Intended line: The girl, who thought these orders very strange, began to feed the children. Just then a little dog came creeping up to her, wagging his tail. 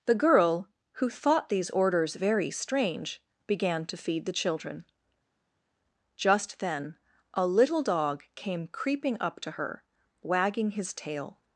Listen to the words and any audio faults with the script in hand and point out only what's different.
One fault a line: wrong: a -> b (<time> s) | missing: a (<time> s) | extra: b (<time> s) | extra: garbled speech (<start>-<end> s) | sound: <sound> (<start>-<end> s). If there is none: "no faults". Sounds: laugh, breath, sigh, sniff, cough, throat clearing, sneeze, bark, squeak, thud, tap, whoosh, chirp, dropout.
no faults